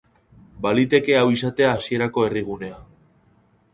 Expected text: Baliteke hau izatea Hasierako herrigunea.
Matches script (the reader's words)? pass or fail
pass